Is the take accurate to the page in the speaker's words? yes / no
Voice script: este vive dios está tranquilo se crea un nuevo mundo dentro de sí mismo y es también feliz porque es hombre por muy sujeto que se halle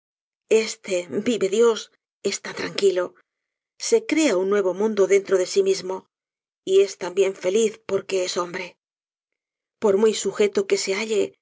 yes